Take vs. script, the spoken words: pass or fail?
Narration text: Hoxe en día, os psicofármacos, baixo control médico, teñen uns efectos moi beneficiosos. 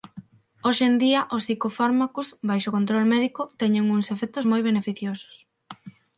pass